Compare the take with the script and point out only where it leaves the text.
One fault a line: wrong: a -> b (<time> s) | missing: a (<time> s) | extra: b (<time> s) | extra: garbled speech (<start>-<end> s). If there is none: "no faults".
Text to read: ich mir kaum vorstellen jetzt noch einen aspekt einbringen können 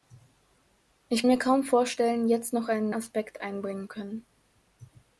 no faults